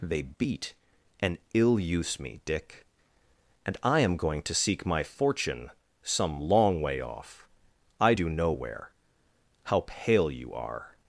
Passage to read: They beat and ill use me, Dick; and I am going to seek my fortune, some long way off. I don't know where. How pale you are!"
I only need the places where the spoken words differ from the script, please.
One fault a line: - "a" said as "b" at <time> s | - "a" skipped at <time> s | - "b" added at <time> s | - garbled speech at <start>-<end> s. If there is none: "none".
- "don't" said as "do" at 8.1 s